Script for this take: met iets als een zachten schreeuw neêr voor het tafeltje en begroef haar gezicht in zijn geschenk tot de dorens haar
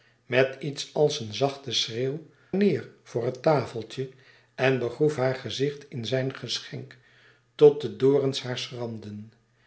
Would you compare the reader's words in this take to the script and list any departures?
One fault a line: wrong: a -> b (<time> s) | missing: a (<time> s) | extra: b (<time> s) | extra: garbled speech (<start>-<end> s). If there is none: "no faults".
no faults